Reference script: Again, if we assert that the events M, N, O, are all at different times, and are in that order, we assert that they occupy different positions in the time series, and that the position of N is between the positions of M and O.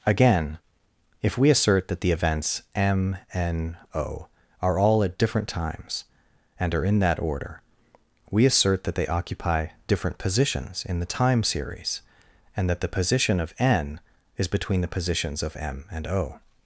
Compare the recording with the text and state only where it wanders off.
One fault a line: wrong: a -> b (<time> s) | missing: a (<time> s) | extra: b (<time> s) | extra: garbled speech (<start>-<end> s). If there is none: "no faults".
no faults